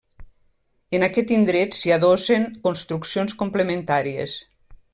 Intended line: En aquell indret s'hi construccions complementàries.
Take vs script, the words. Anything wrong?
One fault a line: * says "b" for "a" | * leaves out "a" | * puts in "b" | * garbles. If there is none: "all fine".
* says "aquest" for "aquell"
* puts in "adossen"